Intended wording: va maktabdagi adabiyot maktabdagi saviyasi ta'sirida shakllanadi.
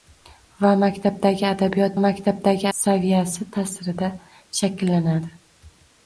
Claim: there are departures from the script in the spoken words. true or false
false